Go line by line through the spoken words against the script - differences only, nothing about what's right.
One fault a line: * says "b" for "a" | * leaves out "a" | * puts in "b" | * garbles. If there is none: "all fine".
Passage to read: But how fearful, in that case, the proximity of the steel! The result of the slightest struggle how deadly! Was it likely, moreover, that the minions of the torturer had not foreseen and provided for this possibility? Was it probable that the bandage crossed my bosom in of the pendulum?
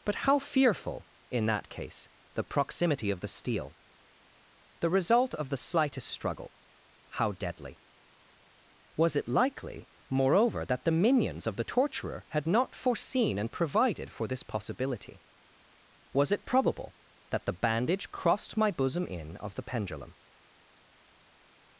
all fine